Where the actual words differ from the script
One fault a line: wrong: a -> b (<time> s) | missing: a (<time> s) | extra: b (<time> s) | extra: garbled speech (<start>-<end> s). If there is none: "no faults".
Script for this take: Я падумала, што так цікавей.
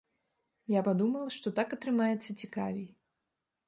extra: атрымаецца (1.8 s)